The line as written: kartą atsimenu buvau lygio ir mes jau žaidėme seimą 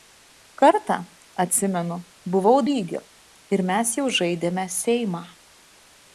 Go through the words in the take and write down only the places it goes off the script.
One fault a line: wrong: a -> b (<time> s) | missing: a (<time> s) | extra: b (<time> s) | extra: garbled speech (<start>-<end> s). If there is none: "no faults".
no faults